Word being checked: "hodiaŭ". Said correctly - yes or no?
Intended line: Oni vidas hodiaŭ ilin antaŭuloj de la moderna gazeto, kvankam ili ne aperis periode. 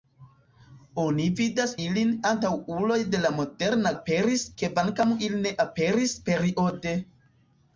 no